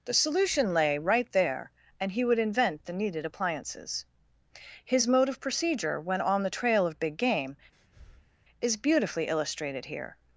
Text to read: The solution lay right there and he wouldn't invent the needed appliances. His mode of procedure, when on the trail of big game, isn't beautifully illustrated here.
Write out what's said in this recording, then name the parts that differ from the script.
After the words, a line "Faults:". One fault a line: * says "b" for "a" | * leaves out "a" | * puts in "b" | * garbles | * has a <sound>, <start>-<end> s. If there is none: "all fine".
The solution lay right there and he would invent the needed appliances. His mode of procedure, when on the trail of big game, is beautifully illustrated here.
Faults:
* says "would" for "wouldn't"
* has a breath, 7.7-8.3 s
* says "is" for "isn't"